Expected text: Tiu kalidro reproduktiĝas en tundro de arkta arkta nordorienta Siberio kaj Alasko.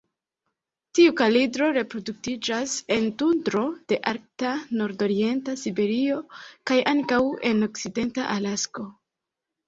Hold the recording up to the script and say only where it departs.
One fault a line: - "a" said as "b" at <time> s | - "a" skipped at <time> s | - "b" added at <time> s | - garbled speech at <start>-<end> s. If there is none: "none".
- "arkta" skipped at 4.5 s
- "ankaŭ en okcidenta" added at 6.9 s